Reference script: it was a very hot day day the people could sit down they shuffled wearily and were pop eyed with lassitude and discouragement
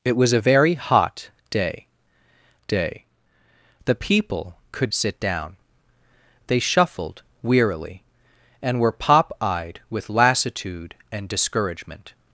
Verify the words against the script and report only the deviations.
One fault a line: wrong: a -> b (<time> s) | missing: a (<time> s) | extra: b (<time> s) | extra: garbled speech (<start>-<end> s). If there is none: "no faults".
no faults